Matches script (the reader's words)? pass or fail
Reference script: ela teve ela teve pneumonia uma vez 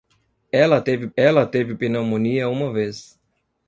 pass